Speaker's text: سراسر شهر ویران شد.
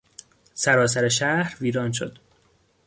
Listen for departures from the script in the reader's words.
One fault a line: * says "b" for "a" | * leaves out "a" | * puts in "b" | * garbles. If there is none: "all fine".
all fine